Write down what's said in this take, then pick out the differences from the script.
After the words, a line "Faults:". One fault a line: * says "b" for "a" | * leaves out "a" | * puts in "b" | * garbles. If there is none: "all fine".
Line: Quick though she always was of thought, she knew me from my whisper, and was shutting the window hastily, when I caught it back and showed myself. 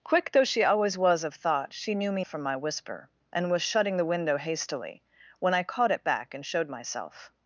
Quick though she always was of thought, she knew me from my whisper, and was shutting the window hastily, when I caught it back and showed myself.
Faults:
all fine